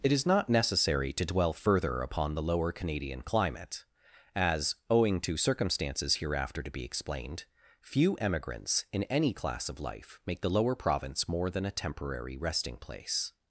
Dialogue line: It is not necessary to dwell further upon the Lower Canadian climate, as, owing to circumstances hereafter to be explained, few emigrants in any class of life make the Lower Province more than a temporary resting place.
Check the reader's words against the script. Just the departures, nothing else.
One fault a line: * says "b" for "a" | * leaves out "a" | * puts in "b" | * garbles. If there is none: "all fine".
all fine